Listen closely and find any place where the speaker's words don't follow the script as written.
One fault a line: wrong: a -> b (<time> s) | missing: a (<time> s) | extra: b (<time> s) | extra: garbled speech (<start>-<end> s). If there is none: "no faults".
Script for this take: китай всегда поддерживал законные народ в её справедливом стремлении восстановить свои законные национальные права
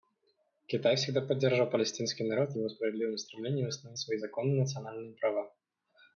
wrong: законные -> палестинский (1.7 s)
wrong: её -> его (2.6 s)